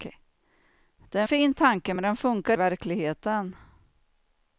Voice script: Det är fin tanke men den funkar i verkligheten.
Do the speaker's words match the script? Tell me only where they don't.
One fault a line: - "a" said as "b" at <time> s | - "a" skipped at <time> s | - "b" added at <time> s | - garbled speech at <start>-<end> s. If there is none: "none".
none